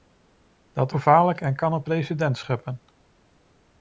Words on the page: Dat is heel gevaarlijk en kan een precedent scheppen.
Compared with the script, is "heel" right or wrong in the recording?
wrong